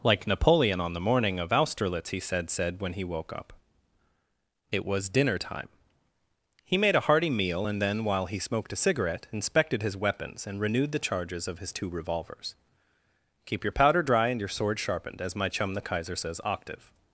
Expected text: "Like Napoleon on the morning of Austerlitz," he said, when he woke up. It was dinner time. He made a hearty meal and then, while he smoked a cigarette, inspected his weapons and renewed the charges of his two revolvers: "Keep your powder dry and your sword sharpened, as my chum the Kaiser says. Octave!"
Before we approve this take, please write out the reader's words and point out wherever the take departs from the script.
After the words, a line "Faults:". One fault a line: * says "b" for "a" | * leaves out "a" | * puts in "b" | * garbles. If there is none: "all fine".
"Like Napoleon on the morning of Austerlitz," he said said, when he woke up. It was dinner time. He made a hearty meal and then, while he smoked a cigarette, inspected his weapons and renewed the charges of his two revolvers: "Keep your powder dry and your sword sharpened, as my chum the Kaiser says. Octave!"
Faults:
* puts in "said"